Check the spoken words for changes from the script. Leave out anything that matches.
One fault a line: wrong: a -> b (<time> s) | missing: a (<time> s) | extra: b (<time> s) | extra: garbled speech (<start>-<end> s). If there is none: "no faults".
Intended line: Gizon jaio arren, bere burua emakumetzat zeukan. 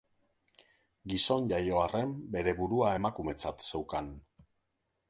no faults